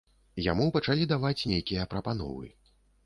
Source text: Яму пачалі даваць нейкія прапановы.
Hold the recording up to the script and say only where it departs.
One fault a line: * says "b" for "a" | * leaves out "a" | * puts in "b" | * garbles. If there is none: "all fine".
all fine